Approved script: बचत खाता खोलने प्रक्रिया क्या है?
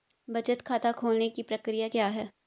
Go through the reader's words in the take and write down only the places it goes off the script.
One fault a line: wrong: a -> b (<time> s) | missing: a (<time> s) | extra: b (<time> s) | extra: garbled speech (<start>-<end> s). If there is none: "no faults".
extra: की (1.3 s)